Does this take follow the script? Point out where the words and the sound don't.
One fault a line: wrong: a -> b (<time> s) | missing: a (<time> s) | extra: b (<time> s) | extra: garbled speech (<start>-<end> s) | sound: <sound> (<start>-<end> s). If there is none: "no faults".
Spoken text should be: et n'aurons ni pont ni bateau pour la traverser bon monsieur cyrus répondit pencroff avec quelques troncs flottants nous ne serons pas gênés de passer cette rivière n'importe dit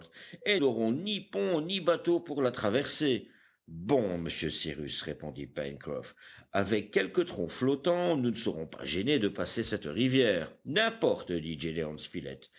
no faults